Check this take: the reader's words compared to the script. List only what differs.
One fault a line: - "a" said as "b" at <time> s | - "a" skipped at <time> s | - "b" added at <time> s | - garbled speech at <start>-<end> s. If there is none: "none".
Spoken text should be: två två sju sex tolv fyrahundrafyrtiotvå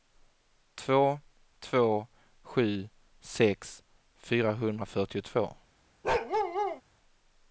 - "tolv" skipped at 3.8 s